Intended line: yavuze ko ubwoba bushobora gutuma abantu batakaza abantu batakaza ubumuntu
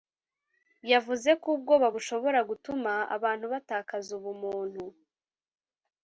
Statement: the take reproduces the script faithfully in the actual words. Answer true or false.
false